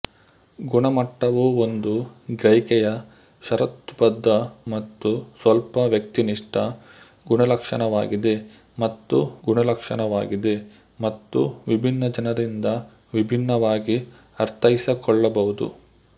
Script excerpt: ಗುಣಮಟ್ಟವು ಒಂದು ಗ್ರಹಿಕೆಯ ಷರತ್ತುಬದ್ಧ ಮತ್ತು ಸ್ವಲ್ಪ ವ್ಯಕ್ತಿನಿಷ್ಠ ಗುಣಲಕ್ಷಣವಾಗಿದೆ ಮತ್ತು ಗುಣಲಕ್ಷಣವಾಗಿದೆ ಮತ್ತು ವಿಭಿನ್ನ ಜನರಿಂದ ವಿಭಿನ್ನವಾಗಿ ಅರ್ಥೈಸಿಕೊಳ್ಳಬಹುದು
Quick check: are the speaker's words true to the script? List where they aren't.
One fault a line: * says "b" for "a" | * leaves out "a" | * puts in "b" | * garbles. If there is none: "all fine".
all fine